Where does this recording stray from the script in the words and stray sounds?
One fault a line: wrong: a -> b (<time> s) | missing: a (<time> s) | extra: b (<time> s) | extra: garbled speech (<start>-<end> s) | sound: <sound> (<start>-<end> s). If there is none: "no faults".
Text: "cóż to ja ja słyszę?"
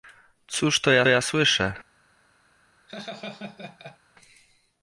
sound: laugh (2.9-4.0 s)